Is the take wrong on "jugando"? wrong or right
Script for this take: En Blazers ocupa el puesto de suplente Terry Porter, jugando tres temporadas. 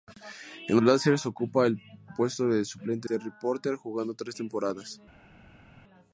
right